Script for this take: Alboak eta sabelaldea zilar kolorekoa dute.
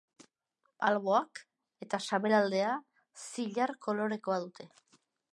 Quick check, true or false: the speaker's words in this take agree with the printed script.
true